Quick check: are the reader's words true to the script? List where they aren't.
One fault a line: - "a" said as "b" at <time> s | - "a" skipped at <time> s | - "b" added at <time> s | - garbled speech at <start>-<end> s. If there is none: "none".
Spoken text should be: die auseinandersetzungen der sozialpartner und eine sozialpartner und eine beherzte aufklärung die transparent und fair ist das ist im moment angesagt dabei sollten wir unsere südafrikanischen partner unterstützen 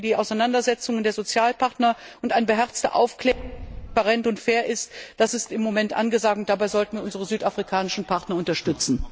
- "sozialpartner und eine" skipped at 2.5 s
- "und" added at 6.4 s